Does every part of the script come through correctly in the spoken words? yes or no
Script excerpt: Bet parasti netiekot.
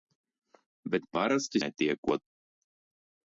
yes